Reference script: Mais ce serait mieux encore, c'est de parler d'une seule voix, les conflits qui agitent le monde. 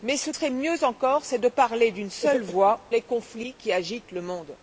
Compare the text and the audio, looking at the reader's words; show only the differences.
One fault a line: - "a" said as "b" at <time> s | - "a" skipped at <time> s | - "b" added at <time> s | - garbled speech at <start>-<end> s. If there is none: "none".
none